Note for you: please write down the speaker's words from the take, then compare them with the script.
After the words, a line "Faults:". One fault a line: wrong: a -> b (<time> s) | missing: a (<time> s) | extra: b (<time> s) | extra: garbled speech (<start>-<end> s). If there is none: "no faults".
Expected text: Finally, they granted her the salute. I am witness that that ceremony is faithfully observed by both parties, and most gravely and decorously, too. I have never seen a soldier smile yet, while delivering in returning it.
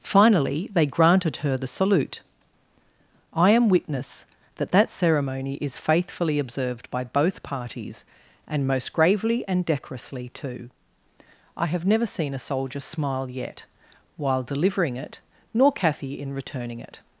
Finally, they granted her the salute. I am witness that that ceremony is faithfully observed by both parties, and most gravely and decorously, too. I have never seen a soldier smile yet, while delivering it, nor Cathy in returning it.
Faults:
extra: it nor Cathy (15.0 s)